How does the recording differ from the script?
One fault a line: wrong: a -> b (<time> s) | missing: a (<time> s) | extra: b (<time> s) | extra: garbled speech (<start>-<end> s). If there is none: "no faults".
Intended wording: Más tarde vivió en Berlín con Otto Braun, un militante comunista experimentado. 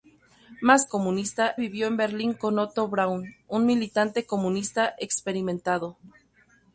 wrong: tarde -> comunista (0.9 s)